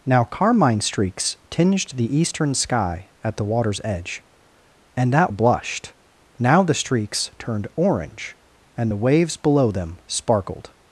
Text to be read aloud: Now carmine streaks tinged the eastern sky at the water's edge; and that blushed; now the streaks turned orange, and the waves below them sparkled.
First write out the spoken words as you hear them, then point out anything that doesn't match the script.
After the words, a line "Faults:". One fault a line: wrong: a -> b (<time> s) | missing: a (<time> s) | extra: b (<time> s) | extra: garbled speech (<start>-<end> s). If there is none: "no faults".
Now carmine streaks tinged the eastern sky at the water's edge; and that blushed; now the streaks turned orange, and the waves below them sparkled.
Faults:
no faults